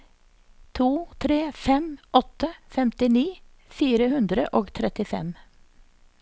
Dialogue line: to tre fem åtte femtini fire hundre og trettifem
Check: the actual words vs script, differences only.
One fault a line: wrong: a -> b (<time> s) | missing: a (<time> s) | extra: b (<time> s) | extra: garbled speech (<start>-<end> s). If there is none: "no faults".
no faults